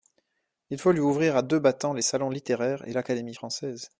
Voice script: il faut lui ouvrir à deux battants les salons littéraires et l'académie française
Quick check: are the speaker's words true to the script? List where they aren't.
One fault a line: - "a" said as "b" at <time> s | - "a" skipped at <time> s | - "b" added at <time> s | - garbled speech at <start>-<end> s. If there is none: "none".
none